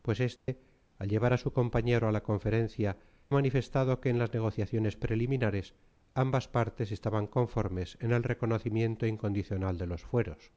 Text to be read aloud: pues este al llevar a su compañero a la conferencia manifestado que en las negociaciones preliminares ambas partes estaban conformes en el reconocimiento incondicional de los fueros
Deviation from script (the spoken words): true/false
false